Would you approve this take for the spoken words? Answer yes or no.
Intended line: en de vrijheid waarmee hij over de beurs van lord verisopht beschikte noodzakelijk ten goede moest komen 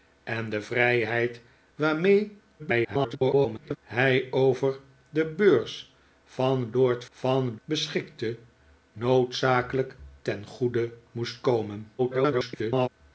no